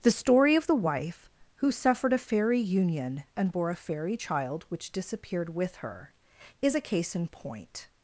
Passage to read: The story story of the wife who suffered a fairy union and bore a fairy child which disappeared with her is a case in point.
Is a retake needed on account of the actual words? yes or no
yes